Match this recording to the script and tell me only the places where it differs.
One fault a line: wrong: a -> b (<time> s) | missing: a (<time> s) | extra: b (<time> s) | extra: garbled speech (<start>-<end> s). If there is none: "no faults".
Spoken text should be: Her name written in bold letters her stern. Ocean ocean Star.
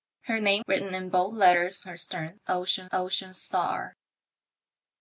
no faults